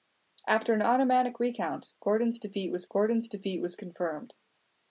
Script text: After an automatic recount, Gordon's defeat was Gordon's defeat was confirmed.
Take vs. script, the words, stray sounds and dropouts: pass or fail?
pass